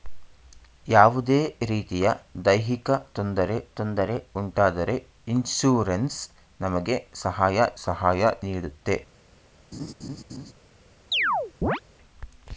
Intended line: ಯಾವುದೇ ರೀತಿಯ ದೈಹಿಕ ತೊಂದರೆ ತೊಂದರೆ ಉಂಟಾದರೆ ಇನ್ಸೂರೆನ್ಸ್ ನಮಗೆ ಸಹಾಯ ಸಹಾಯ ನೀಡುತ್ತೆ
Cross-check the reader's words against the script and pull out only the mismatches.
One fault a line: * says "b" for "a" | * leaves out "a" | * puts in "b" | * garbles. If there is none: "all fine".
all fine